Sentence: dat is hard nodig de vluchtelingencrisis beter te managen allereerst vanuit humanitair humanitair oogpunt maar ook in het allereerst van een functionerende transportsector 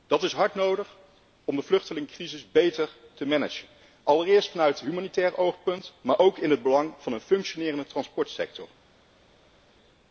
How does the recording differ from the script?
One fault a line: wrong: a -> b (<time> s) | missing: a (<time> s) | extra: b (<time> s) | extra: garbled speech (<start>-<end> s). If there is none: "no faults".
extra: om (1.4 s)
missing: humanitair (5.4 s)
wrong: allereerst -> belang (6.6 s)